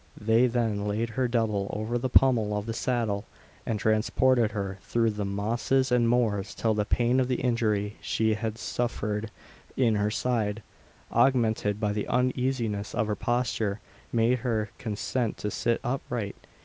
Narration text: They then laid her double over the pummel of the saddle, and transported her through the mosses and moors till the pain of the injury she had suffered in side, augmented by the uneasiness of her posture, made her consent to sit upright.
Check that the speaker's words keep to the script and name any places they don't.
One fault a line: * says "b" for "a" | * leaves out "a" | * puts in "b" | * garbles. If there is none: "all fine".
* puts in "her"